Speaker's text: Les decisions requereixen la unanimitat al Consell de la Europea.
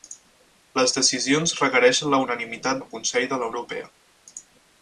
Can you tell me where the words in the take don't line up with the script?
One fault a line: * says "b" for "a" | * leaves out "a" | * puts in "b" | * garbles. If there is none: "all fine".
all fine